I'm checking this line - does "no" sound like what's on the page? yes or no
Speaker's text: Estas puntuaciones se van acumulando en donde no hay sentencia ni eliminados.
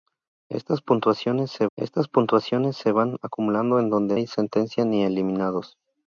no